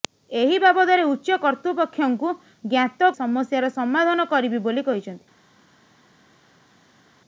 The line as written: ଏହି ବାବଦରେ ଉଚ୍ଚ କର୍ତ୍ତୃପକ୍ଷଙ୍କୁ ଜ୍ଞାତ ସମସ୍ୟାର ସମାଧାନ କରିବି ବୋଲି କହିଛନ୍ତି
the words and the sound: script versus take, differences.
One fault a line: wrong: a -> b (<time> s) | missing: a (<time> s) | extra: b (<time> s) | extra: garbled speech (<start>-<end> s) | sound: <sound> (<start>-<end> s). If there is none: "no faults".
no faults